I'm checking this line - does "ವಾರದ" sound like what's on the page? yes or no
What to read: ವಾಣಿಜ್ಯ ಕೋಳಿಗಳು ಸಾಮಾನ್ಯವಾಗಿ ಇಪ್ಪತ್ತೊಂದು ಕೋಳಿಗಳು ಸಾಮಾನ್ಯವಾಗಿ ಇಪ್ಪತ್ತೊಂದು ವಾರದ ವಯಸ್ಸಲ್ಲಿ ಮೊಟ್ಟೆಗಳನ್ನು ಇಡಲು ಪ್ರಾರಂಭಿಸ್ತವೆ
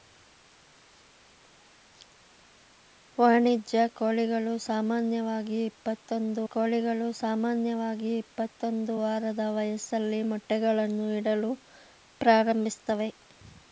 yes